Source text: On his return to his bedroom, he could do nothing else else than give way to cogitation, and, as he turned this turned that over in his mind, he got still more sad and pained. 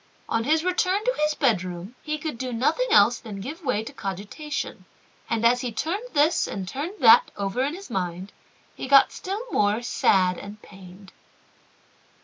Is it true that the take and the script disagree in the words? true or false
true